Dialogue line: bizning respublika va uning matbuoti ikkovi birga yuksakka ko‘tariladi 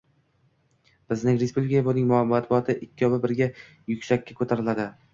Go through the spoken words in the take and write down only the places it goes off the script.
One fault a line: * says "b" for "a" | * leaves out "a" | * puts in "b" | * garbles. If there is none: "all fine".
all fine